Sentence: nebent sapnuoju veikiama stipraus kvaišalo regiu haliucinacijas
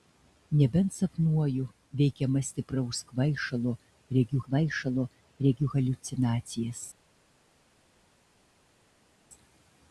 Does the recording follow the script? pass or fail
fail